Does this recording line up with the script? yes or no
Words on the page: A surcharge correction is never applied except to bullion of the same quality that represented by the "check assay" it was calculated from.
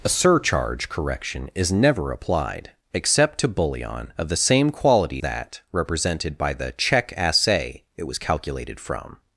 yes